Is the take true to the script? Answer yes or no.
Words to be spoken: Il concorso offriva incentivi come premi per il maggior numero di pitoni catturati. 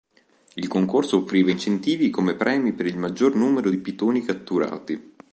yes